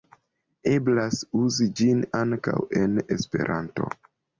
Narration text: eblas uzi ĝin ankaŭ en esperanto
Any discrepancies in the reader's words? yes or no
no